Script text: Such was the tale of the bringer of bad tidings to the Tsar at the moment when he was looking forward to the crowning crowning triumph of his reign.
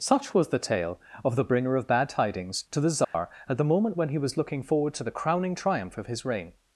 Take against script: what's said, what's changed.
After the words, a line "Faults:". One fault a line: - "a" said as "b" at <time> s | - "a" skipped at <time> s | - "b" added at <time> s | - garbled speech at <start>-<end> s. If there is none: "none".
Such was the tale of the bringer of bad tidings to the Tsar at the moment when he was looking forward to the crowning triumph of his reign.
Faults:
- "crowning" skipped at 5.5 s